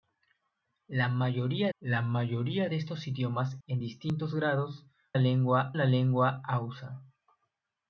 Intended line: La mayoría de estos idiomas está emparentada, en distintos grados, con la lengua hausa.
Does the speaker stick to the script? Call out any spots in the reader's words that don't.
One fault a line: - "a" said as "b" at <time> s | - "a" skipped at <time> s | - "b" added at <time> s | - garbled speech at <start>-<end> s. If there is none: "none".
- "la mayoría" added at 1.8 s
- "está emparentada" skipped at 3.5 s
- "con" said as "lengua" at 5.2 s